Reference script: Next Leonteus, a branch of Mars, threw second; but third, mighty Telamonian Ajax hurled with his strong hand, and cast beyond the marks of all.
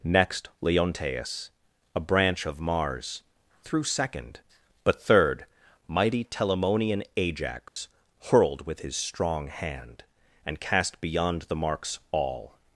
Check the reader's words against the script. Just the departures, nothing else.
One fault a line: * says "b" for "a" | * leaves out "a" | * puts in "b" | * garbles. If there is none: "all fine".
* leaves out "of"